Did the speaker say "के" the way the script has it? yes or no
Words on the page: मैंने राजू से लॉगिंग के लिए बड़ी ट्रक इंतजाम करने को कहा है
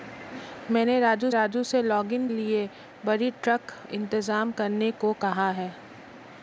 no